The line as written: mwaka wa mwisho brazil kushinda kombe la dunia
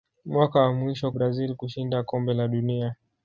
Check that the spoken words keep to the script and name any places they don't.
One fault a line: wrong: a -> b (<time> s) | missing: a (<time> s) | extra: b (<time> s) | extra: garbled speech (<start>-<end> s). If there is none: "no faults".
no faults